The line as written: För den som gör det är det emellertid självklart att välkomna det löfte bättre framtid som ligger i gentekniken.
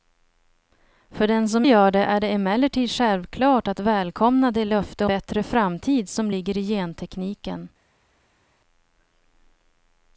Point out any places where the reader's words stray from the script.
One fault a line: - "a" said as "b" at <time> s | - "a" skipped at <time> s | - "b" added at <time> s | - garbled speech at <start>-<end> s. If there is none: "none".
none